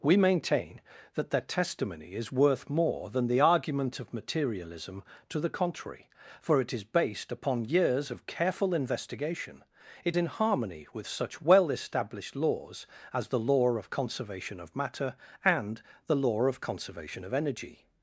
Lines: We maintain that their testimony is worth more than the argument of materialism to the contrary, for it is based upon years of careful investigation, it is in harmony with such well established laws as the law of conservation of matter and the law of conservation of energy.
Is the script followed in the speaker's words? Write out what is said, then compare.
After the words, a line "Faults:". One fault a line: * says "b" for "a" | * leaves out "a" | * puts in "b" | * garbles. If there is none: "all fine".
We maintain that their testimony is worth more than the argument of materialism to the contrary, for it is based upon years of careful investigation, it in harmony with such well established laws as the law of conservation of matter and the law of conservation of energy.
Faults:
* leaves out "is"